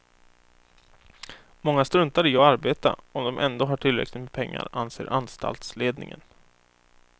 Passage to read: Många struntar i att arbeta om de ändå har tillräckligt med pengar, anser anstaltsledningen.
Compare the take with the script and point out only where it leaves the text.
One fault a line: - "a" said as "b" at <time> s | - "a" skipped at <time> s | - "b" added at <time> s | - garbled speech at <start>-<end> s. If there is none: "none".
none